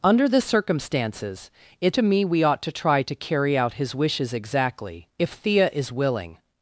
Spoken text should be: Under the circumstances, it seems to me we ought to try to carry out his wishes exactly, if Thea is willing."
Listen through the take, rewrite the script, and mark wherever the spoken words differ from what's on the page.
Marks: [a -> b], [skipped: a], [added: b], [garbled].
Under the circumstances, it [skipped: seems] to me we ought to try to carry out his wishes exactly, if Thea is willing."